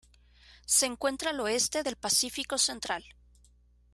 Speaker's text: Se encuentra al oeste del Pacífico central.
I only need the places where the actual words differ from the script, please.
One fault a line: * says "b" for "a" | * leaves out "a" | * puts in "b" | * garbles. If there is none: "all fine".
all fine